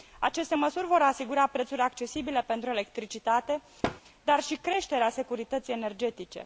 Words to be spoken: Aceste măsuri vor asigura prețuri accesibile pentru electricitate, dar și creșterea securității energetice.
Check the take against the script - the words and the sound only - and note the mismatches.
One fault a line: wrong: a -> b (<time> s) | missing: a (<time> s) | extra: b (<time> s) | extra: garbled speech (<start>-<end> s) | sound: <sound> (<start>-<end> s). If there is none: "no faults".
sound: thud (3.8-4.0 s)